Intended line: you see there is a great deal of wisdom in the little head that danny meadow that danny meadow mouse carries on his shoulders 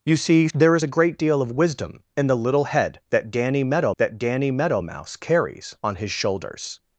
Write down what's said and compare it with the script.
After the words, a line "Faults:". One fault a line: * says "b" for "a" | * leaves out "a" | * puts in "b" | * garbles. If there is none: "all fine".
you see there is a great deal of wisdom in the little head that danny meadow that danny meadow mouse carries on his shoulders
Faults:
all fine